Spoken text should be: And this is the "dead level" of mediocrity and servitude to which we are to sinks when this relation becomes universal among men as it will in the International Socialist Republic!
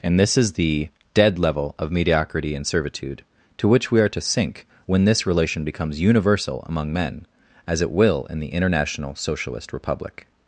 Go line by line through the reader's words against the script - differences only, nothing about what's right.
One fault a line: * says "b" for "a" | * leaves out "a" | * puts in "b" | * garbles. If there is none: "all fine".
* says "sink" for "sinks"